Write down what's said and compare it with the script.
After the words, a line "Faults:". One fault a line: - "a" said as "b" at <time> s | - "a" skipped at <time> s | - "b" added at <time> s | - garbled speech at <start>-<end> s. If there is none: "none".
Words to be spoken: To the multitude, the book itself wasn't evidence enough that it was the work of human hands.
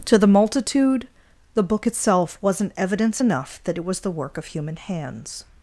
To the multitude, the book itself wasn't evidence enough that it was the work of human hands.
Faults:
none